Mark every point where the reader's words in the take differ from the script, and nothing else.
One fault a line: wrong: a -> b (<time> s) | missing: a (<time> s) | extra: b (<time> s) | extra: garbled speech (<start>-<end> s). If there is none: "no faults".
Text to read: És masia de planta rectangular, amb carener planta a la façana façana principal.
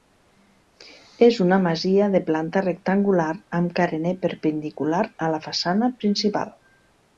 extra: una (1.4 s)
wrong: planta -> perpendicular (4.2 s)
missing: façana (5.9 s)